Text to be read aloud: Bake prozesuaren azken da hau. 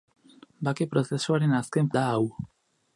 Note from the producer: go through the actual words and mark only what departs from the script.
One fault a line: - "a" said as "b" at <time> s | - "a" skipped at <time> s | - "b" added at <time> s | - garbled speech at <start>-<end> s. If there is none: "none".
none